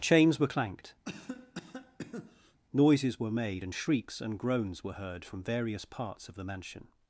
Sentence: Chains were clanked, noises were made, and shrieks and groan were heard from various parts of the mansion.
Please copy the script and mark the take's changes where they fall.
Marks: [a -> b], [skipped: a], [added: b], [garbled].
Chains were clanked, noises were made, and shrieks and [groan -> groans] were heard from various parts of the mansion.